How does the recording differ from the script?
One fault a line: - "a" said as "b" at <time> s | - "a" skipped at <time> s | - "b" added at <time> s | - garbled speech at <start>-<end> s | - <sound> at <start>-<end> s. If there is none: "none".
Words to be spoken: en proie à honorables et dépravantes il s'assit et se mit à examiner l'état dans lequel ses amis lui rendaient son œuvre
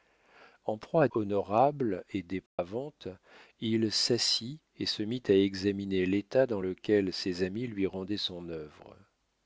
- dropout at 2.5-2.6 s